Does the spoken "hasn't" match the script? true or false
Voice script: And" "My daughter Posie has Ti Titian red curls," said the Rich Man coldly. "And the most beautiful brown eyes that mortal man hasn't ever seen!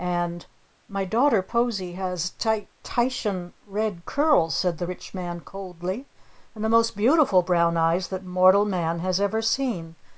false